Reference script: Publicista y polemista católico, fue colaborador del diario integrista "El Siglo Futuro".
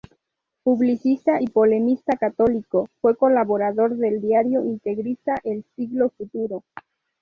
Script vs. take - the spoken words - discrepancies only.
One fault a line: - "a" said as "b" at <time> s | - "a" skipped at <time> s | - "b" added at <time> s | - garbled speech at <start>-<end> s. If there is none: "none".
none